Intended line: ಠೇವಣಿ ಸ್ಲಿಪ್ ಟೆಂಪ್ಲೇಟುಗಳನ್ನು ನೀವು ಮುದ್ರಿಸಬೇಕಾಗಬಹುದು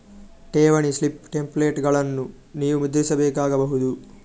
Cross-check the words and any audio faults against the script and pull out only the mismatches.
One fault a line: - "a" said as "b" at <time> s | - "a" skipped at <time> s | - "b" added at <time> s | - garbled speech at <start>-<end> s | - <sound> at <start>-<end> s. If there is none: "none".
none